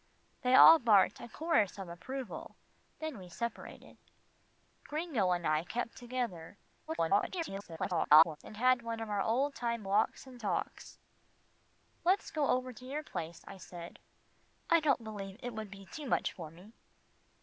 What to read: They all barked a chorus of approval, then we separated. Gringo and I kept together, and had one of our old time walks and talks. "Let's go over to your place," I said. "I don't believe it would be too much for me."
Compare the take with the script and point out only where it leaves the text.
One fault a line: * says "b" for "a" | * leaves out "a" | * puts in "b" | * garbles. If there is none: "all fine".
* garbles